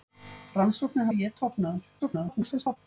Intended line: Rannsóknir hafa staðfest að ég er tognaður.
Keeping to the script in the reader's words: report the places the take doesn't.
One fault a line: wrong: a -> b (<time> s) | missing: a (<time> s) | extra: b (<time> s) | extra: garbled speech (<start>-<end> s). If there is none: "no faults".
missing: hafa staðfest (1.1 s)
extra: garbled speech (2.0-2.8 s)